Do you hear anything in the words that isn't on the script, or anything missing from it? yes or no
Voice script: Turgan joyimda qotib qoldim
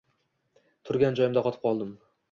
no